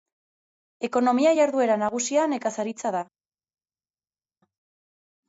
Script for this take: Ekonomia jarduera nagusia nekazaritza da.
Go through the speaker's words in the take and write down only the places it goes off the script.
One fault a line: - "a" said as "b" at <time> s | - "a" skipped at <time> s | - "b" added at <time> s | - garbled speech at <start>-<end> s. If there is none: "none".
none